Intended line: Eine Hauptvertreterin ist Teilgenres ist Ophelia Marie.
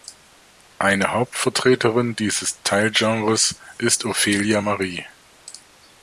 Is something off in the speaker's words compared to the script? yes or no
yes